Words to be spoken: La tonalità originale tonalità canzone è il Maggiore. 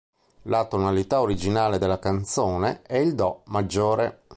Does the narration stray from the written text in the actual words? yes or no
yes